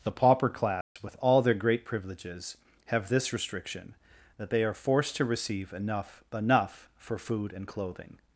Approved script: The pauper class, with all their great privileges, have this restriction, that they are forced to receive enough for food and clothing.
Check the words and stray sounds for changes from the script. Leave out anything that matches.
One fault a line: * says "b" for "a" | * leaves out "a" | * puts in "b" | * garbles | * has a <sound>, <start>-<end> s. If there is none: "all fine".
* has a dropout, 0.8-1.0 s
* puts in "enough"